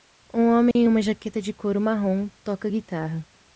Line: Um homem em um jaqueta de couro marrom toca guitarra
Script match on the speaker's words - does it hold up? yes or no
no